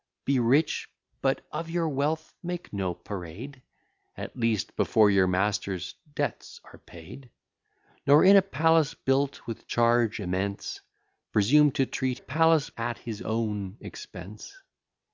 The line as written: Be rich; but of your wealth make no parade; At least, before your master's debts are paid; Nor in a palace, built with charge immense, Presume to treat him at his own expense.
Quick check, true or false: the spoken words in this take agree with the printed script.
false